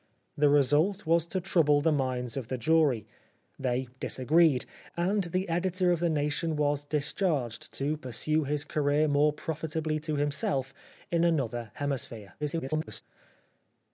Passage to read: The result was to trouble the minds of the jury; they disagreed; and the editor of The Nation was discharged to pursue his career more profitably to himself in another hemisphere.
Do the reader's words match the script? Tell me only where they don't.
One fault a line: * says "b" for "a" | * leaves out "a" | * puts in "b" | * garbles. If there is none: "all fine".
* garbles